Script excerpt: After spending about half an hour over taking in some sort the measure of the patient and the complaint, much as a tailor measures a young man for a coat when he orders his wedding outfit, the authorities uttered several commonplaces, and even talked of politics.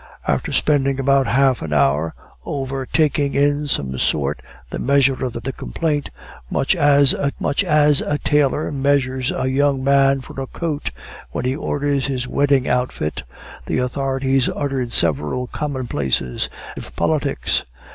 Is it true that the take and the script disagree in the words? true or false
true